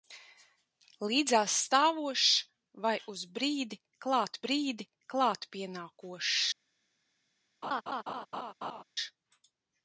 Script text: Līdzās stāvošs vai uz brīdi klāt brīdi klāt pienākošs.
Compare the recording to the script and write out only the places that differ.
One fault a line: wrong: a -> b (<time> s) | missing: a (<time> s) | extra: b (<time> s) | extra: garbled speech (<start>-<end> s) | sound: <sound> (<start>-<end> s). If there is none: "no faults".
sound: laugh (7.6-8.8 s)